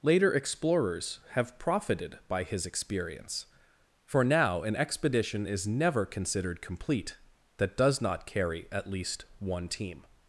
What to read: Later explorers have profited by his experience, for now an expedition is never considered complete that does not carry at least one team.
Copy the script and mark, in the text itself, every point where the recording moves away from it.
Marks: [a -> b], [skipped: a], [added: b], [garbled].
Later explorers have profited by his experience, for now an expedition is never considered complete that does not carry at least one team.